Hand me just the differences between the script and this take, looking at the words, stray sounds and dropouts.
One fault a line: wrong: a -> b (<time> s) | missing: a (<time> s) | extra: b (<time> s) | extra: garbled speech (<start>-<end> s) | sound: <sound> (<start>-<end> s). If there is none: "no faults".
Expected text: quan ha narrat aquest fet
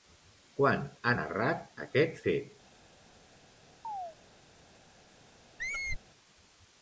sound: chirp (3.8-4.2 s)
sound: squeak (5.6-6.0 s)